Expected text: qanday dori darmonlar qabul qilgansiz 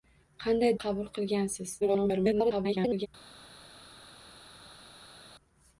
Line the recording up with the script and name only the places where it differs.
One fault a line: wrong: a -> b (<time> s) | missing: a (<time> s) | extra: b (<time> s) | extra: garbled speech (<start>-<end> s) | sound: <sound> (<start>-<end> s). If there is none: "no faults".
missing: dori darmonlar (0.7 s)
extra: garbled speech (1.8-3.1 s)